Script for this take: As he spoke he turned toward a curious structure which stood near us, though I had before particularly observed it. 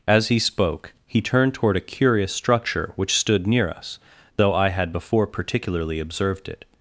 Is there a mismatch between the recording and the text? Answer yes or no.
no